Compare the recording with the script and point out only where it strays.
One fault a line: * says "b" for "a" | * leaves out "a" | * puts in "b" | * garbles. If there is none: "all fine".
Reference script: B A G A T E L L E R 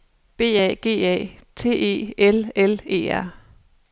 all fine